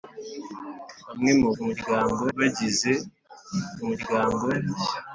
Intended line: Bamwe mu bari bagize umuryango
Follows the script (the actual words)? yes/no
no